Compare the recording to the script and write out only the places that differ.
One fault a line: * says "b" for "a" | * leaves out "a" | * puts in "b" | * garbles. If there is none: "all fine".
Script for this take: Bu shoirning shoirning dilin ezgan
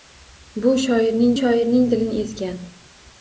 all fine